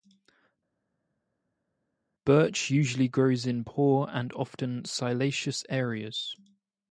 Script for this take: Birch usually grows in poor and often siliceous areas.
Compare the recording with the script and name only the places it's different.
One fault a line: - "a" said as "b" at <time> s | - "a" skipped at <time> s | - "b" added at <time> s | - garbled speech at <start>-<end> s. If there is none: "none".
none